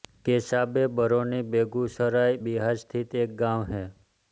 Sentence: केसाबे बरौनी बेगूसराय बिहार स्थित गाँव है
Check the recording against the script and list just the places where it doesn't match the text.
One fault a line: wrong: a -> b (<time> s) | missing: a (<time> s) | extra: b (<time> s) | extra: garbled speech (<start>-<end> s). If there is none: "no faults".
extra: एक (3.2 s)